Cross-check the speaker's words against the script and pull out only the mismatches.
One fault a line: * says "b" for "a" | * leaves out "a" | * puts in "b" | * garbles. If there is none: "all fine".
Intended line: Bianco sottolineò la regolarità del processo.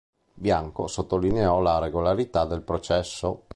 all fine